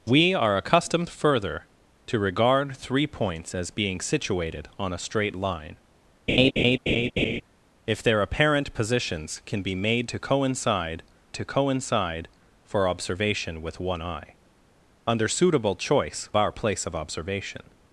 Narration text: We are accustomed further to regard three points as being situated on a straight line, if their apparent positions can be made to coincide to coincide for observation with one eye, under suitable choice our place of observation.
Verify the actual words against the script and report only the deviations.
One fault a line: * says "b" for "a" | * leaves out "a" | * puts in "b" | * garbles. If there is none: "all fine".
all fine